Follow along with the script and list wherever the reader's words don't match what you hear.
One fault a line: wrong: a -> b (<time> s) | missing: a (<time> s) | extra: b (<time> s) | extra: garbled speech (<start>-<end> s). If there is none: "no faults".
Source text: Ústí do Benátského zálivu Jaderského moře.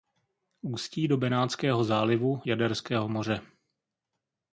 no faults